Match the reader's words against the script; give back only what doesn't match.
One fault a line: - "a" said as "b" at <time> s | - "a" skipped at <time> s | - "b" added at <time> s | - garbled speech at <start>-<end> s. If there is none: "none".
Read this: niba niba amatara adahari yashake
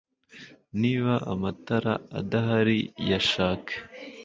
- "niba" skipped at 1.1 s